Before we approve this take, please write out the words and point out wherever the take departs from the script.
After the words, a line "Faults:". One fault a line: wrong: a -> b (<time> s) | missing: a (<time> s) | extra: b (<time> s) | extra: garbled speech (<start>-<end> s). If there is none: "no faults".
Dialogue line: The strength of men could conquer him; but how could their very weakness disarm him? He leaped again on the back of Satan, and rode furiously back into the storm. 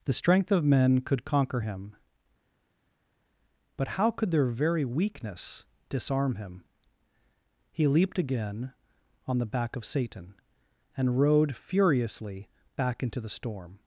The strength of men could conquer him; but how could their very weakness disarm him? He leaped again on the back of Satan, and rode furiously back into the storm.
Faults:
no faults